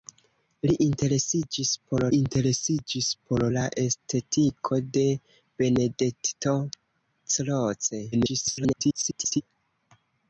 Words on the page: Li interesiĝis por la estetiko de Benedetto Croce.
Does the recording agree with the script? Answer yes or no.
no